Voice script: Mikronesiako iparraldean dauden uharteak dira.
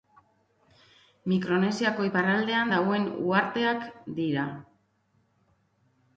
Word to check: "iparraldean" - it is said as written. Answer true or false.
true